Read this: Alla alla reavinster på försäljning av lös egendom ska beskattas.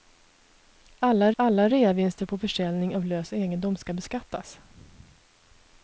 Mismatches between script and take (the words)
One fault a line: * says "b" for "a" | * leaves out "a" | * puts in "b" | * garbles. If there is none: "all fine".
all fine